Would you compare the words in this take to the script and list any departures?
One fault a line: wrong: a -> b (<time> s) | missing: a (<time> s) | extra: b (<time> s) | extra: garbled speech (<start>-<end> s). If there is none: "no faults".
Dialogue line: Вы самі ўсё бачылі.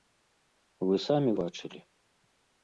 missing: ўсё (1.3 s)